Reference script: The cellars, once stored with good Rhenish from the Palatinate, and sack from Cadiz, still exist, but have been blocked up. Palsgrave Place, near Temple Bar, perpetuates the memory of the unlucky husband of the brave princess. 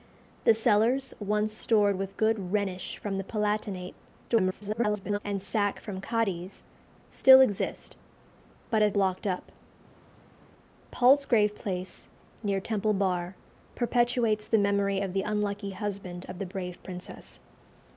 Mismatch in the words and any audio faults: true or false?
true